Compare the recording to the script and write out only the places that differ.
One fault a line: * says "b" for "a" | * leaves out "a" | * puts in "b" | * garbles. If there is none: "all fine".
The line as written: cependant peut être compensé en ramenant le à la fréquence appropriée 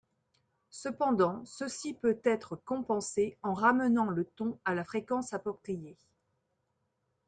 * puts in "ceci"
* puts in "ton"